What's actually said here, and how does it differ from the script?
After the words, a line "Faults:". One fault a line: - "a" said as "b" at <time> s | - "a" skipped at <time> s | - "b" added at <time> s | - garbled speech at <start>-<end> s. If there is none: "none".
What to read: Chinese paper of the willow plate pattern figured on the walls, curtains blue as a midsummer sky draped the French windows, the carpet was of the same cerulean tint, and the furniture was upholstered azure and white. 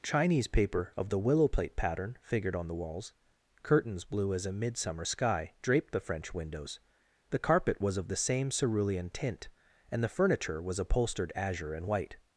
Chinese paper of the willow plate pattern figured on the walls, curtains blue as a midsummer sky draped the French windows, the carpet was of the same cerulean tint, and the furniture was upholstered azure and white.
Faults:
none